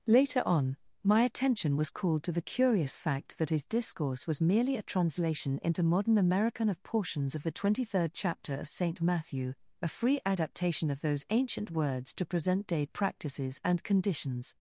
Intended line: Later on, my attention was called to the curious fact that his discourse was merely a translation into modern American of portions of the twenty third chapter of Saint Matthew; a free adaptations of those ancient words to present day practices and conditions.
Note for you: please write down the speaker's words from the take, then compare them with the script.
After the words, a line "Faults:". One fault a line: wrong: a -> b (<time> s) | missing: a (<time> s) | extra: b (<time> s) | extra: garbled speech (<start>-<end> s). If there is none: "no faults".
Later on, my attention was called to the curious fact that his discourse was merely a translation into modern American of portions of the twenty third chapter of Saint Matthew; a free adaptation of those ancient words to present day practices and conditions.
Faults:
wrong: adaptations -> adaptation (10.2 s)